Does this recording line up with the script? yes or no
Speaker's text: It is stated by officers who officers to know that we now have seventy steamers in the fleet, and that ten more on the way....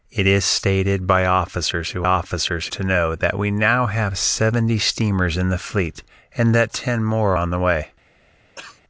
yes